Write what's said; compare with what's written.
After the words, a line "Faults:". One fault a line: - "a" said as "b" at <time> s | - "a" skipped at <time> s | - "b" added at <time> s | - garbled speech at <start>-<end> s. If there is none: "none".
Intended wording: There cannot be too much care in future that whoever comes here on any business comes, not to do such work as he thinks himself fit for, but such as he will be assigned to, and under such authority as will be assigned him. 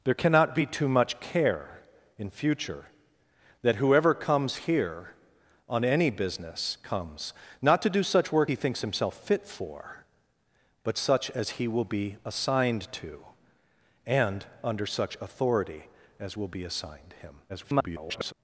There cannot be too much care in future that whoever comes here on any business comes, not to do such work he thinks himself fit for, but such as he will be assigned to, and under such authority as will be assigned him. [garbled]
Faults:
- "as" skipped at 8.5 s
- garbled speech at 17.5-18.3 s